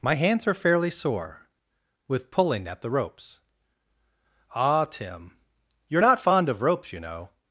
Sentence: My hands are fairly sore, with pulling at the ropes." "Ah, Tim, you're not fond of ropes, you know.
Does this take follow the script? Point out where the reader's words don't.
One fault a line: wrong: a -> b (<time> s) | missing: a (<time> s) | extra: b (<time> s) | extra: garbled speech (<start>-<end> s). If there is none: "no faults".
no faults